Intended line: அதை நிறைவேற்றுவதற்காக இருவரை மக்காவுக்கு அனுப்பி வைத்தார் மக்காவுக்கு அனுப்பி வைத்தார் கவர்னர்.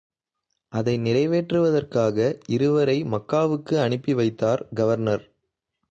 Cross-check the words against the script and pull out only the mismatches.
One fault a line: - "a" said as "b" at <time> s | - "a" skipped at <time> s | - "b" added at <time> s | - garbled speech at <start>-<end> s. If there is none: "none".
- "மக்காவுக்கு அனுப்பி வைத்தார்" skipped at 4.7 s